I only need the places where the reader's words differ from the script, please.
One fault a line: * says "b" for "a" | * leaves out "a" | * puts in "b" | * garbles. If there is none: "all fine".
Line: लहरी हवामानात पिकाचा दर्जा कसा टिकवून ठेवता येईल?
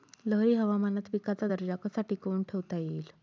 all fine